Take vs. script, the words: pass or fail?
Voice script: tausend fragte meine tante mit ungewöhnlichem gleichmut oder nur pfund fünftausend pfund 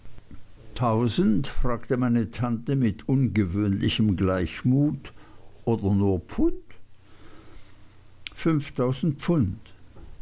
pass